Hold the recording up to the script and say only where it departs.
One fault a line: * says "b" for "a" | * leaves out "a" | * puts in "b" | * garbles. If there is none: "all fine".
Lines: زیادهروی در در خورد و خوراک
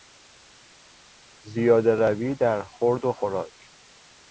* leaves out "در"